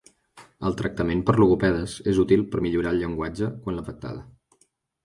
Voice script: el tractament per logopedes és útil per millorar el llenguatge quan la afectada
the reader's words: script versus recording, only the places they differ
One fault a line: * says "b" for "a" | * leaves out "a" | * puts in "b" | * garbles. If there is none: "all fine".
all fine